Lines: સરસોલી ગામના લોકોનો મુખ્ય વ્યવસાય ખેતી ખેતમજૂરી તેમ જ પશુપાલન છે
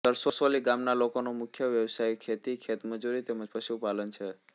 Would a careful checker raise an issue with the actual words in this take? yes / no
no